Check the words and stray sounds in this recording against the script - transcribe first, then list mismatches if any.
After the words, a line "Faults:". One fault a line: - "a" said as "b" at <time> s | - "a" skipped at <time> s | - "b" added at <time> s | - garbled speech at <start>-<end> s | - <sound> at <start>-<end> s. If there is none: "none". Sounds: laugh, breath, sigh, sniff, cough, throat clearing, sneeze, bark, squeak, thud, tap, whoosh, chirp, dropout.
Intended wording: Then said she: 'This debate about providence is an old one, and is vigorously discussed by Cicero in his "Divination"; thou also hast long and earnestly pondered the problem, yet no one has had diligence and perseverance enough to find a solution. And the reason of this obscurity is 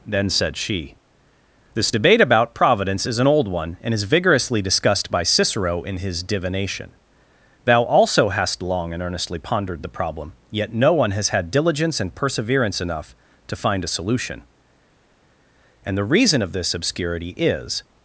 Then said she: 'This debate about providence is an old one, and is vigorously discussed by Cicero in his "Divination"; thou also hast long and earnestly pondered the problem, yet no one has had diligence and perseverance enough to find a solution. And the reason of this obscurity is
Faults:
none